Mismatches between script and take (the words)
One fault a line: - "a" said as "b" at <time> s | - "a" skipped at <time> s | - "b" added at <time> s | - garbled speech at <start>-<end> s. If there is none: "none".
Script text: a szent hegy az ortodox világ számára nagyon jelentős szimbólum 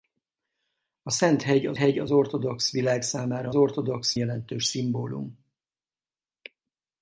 - "hegy az" added at 1.7 s
- "nagyon" said as "ortodox" at 3.5 s